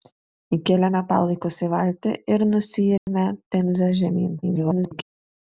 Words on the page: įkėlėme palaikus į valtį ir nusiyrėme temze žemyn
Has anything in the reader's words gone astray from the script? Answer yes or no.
yes